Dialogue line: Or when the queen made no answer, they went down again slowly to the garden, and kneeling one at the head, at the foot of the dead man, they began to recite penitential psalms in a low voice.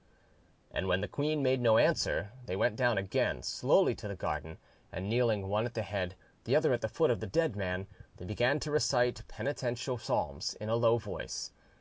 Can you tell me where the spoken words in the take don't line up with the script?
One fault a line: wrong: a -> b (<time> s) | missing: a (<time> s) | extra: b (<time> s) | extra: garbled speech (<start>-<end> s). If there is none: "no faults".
wrong: Or -> And (0.7 s)
extra: the other (6.5 s)